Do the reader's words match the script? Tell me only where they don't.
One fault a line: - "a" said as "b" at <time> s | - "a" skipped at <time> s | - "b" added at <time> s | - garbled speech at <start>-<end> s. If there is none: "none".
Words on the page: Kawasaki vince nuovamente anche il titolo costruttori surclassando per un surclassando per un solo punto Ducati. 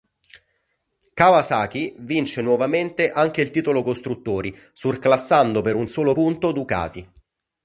- "surclassando per un" skipped at 5.9 s